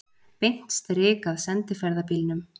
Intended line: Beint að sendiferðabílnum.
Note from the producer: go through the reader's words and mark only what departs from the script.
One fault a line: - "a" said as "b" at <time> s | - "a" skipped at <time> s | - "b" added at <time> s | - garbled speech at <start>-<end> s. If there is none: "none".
- "strik" added at 0.8 s